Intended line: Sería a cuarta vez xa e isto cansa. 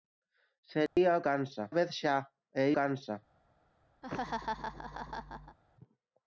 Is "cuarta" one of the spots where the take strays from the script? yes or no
yes